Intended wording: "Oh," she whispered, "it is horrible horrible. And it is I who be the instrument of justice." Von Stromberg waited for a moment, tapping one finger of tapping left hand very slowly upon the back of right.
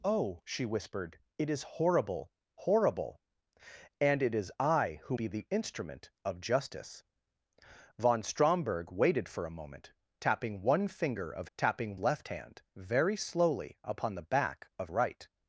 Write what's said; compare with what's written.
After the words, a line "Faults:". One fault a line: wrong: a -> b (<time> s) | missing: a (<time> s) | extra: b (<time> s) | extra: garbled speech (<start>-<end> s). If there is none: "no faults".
"Oh," she whispered, "it is horrible horrible. And it is I who be the instrument of justice." Von Stromberg waited for a moment, tapping one finger of tapping left hand very slowly upon the back of right.
Faults:
no faults